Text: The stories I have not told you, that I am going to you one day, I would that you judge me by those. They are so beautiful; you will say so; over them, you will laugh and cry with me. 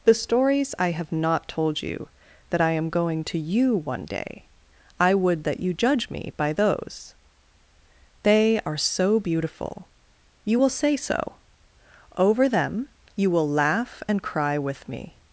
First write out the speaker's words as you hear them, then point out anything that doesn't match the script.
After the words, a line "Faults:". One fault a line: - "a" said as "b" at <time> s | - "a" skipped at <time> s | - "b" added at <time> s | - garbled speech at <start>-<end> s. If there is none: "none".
The stories I have not told you, that I am going to you one day, I would that you judge me by those. They are so beautiful; you will say so; over them, you will laugh and cry with me.
Faults:
none